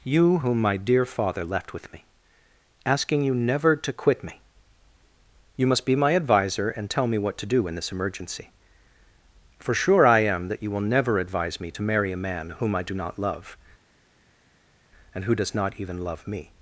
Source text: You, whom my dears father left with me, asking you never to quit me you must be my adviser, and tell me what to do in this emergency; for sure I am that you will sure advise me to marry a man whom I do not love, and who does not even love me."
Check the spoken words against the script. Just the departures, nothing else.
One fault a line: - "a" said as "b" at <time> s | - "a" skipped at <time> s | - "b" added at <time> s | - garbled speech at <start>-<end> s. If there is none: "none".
- "dears" said as "dear" at 0.8 s
- "sure" said as "never" at 10.9 s